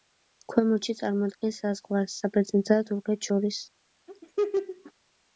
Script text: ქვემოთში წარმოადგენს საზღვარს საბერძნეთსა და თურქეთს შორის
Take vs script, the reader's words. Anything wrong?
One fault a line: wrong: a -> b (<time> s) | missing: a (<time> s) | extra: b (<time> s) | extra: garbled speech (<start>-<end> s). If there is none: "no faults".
no faults